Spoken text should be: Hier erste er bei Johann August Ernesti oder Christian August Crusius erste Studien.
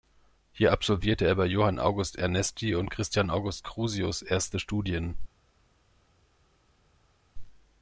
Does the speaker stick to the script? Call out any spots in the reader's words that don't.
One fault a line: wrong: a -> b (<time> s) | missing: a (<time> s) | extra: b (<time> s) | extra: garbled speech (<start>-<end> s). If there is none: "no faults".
wrong: erste -> absolvierte (0.7 s)
wrong: oder -> und (2.7 s)